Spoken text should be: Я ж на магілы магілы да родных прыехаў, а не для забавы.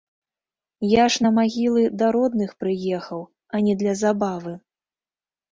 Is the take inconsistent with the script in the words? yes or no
yes